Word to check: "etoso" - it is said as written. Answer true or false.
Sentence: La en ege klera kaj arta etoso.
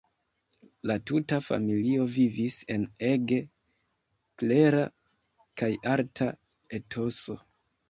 true